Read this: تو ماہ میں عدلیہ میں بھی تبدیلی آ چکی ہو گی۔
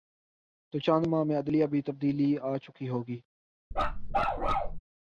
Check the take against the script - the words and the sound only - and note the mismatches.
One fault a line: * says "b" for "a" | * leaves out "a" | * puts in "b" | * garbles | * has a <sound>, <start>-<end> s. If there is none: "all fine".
* puts in "چند"
* has a bark, 3.7-4.8 s